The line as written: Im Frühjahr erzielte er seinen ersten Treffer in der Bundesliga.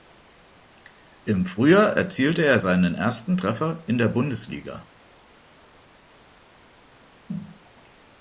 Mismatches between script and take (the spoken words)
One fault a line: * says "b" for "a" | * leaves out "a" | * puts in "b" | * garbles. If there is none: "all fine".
all fine